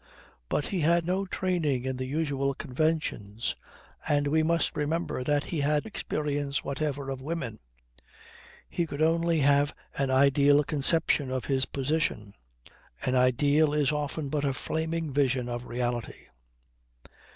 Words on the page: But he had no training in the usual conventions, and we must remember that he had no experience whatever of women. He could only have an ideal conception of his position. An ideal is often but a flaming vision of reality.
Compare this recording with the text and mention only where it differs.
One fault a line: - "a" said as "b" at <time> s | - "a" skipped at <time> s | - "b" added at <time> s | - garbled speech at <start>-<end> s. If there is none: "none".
- "no" skipped at 5.9 s